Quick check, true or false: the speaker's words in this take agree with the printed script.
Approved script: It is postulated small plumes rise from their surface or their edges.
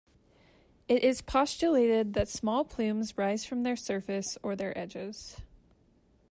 false